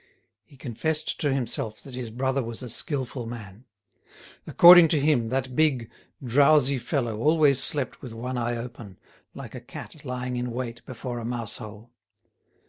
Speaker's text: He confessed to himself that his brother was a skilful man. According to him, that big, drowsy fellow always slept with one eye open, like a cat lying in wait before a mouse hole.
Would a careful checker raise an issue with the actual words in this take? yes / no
no